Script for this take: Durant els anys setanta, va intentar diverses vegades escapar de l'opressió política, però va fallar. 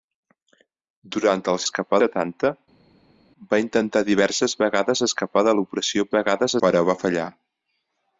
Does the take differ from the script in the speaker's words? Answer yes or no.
yes